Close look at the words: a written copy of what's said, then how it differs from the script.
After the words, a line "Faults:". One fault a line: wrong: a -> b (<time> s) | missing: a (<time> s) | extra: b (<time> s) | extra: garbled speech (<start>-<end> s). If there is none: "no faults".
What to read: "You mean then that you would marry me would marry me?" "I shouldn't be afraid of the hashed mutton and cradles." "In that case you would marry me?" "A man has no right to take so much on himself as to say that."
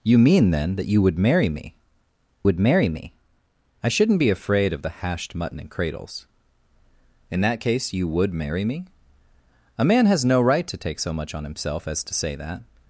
"You mean then that you would marry me would marry me?" "I shouldn't be afraid of the hashed mutton and cradles." "In that case you would marry me?" "A man has no right to take so much on himself as to say that."
Faults:
no faults